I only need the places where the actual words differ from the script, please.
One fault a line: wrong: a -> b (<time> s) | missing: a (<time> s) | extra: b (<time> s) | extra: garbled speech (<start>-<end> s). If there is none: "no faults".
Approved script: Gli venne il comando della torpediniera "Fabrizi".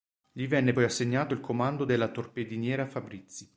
extra: poi assegnato (0.7 s)